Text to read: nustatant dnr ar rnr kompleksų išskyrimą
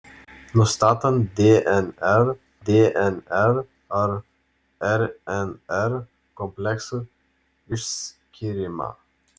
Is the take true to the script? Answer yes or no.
no